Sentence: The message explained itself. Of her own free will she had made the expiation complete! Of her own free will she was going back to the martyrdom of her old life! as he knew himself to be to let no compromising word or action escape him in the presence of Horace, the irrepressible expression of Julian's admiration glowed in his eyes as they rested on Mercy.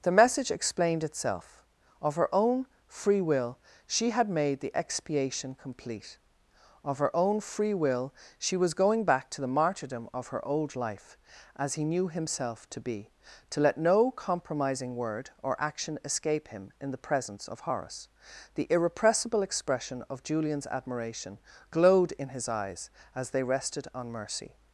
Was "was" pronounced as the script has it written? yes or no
yes